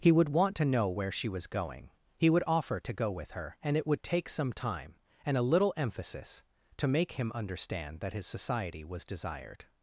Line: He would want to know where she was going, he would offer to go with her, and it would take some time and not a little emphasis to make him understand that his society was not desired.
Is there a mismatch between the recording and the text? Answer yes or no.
yes